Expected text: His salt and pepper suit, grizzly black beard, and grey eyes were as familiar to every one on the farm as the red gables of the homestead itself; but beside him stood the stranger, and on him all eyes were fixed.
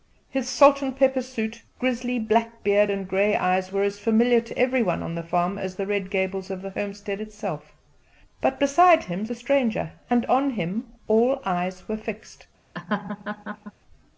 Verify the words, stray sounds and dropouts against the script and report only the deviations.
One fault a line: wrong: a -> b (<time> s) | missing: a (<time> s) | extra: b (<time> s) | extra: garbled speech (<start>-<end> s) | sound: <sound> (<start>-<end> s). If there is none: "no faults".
missing: stood (9.3 s)
sound: laugh (12.7-13.7 s)